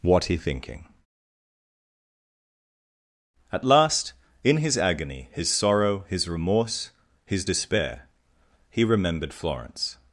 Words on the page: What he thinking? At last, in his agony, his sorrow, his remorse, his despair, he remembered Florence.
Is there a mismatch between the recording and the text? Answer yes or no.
no